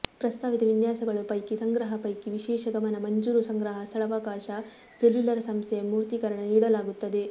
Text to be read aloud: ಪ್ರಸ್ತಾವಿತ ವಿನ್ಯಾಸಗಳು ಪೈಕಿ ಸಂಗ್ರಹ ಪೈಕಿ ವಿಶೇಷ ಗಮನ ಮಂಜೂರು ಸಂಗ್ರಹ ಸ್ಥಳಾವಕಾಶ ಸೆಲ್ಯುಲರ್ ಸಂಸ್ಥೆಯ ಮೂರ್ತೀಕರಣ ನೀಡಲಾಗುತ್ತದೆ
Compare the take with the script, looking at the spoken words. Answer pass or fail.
pass